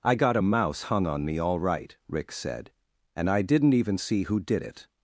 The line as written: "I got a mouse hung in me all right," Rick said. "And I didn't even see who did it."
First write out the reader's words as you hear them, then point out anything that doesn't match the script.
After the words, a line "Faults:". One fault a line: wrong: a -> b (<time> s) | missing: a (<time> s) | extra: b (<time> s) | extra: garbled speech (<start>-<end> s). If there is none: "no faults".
"I got a mouse hung on me all right," Rick said. "And I didn't even see who did it."
Faults:
wrong: in -> on (1.1 s)